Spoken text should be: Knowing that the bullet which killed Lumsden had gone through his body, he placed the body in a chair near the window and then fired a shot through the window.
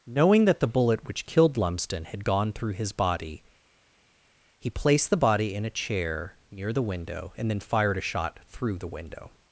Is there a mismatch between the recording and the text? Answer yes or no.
no